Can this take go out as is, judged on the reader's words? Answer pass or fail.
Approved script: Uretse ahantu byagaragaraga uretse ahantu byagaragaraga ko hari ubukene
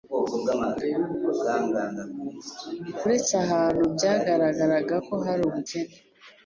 fail